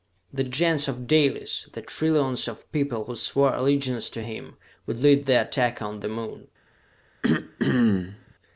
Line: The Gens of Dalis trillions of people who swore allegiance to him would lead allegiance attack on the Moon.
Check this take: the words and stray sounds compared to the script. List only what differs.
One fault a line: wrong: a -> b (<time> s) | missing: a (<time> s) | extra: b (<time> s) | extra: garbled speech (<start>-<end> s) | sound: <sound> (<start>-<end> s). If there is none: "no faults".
extra: the (1.7 s)
wrong: allegiance -> the (5.2 s)
sound: throat clearing (7.2-8.3 s)